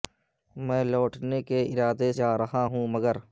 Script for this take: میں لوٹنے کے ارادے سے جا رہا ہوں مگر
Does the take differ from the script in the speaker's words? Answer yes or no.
yes